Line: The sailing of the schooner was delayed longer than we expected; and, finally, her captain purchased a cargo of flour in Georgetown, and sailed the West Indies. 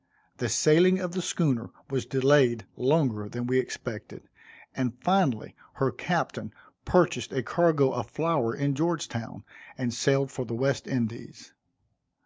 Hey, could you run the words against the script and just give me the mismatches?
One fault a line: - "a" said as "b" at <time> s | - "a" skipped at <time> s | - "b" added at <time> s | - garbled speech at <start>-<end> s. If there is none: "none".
- "for" added at 10.3 s